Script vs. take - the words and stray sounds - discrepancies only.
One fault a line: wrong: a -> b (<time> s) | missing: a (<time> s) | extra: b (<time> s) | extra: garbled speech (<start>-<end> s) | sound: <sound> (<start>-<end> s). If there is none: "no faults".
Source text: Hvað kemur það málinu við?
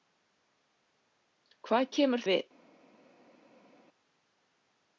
missing: það málinu (2.2 s)